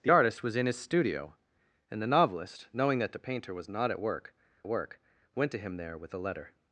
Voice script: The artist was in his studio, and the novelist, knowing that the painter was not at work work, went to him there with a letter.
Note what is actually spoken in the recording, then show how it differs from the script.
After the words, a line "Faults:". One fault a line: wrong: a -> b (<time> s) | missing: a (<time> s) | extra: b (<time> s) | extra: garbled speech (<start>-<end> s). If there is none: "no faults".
The artist was in his studio, and the novelist, knowing that the painter was not at work work, went to him there with a letter.
Faults:
no faults